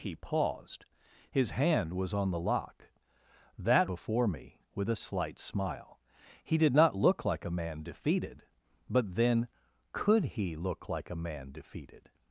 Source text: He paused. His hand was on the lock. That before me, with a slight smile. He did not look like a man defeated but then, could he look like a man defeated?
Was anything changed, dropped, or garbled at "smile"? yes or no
no